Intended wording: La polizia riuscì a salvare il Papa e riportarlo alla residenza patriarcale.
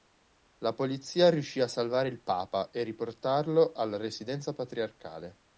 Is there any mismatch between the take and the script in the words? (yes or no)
no